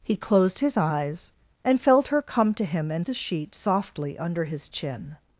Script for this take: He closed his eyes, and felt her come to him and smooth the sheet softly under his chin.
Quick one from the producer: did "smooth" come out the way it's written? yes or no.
no